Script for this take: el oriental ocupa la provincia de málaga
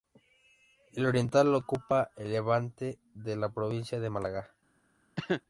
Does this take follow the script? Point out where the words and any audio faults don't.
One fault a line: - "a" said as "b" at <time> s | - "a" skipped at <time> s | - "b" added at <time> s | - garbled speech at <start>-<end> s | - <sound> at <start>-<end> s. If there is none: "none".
- "el levante de" added at 2.2 s
- cough at 5.2-5.4 s